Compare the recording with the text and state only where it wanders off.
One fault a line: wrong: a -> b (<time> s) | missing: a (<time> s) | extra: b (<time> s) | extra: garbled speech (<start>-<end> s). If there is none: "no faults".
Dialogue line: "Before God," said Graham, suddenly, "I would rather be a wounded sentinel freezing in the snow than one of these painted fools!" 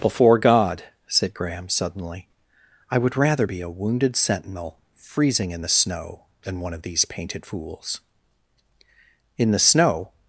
extra: In the snow (9.4 s)